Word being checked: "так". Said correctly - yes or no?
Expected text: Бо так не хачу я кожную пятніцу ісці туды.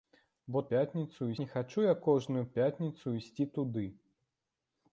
no